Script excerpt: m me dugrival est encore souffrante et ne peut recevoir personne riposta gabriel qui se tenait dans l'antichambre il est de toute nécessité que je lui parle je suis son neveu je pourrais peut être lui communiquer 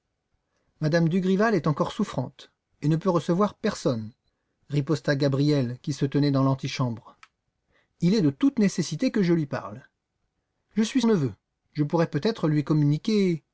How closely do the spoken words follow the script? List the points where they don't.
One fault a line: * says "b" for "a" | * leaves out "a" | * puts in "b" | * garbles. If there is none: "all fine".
* leaves out "son"